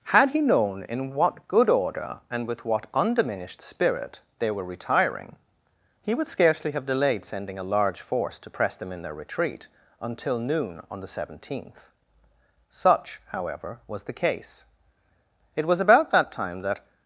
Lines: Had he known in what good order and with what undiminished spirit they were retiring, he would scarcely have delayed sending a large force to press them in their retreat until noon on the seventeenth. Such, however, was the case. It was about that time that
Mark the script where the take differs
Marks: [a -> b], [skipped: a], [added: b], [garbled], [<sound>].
Had he known in what good order and with what undiminished spirit they were retiring, he would scarcely have delayed sending a large force to press them in their retreat until noon on the seventeenth. Such, however, was the case. It was about that time that